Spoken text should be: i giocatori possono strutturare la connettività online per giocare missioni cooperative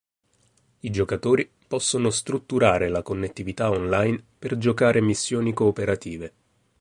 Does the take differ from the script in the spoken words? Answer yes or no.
no